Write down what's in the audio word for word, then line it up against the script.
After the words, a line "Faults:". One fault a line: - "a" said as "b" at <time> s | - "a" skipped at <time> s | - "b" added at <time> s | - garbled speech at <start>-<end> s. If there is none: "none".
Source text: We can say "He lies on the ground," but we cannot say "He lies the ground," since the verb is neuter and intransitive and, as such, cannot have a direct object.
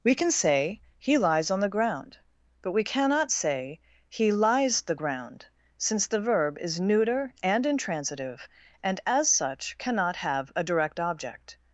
We can say "He lies on the ground," but we cannot say "He lies the ground," since the verb is neuter and intransitive and, as such, cannot have a direct object.
Faults:
none